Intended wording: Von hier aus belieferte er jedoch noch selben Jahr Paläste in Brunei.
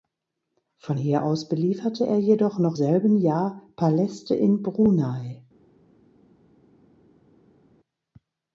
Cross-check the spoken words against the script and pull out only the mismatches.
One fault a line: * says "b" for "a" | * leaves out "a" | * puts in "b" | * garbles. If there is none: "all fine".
all fine